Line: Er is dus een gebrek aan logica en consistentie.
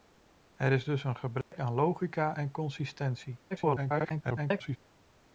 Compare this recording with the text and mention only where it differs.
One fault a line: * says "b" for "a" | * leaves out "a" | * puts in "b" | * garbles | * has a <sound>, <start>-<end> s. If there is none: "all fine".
* has a dropout, 1.4-1.5 s
* garbles